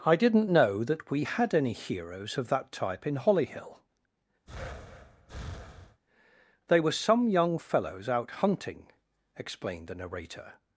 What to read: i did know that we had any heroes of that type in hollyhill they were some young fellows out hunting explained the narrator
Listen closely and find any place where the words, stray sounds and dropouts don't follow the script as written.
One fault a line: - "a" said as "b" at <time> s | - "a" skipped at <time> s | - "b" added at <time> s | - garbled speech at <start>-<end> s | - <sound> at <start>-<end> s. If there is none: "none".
- "did" said as "didn't" at 0.1 s
- breath at 4.5-6.0 s